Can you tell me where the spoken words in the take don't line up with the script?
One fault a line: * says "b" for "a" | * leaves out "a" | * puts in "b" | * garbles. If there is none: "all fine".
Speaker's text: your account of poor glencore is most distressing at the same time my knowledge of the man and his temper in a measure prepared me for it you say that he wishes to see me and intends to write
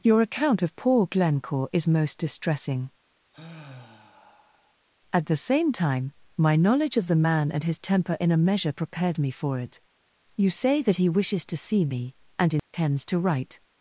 all fine